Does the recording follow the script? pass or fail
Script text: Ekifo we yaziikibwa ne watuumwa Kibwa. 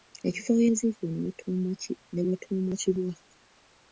pass